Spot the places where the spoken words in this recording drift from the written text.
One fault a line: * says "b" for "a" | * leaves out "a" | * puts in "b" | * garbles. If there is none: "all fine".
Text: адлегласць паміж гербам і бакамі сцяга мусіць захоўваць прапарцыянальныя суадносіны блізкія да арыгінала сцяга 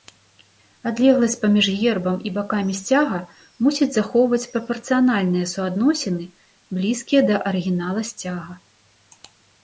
all fine